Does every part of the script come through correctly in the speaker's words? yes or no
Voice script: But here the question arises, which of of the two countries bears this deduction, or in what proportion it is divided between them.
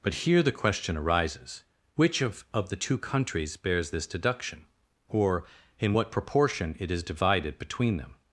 yes